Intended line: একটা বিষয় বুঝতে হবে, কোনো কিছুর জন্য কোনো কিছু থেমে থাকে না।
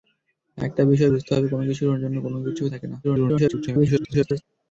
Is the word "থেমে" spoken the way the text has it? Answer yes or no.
no